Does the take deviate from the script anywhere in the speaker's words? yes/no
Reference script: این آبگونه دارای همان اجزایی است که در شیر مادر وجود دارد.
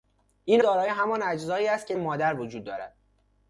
yes